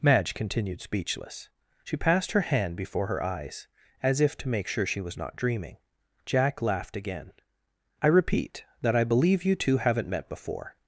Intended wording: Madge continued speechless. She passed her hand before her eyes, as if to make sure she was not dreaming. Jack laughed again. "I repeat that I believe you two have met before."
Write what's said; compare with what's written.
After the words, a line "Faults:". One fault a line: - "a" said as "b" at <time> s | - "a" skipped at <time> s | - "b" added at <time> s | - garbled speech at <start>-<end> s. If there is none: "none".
Madge continued speechless. She passed her hand before her eyes, as if to make sure she was not dreaming. Jack laughed again. "I repeat that I believe you two haven't met before."
Faults:
- "have" said as "haven't" at 9.8 s